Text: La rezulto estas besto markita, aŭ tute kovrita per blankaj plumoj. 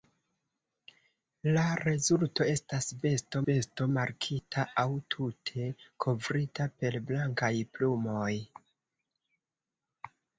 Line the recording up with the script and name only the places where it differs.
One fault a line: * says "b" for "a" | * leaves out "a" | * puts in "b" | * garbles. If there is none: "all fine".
* puts in "besto"